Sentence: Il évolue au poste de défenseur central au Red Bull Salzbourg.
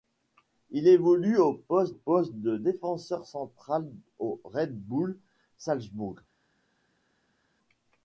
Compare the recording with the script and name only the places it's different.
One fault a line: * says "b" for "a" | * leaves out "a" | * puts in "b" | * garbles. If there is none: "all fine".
* puts in "poste"